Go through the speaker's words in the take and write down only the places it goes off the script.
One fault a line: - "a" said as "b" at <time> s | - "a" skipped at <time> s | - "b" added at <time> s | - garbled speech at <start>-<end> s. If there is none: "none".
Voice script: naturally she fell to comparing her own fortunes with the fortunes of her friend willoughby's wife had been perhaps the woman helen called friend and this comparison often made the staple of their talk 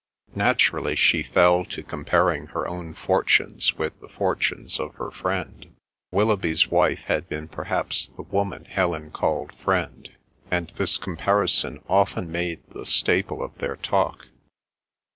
none